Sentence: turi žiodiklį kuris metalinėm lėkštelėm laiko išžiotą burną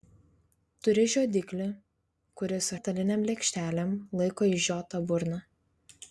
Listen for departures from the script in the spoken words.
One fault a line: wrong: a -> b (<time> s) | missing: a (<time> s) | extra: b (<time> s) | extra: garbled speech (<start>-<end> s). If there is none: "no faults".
no faults